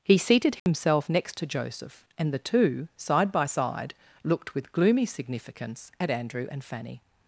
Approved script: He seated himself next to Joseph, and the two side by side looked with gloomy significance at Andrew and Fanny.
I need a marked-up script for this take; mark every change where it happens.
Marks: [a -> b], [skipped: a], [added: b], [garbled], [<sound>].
He seated himself [dropout] next to Joseph, and the two side by side looked with gloomy significance at Andrew and Fanny.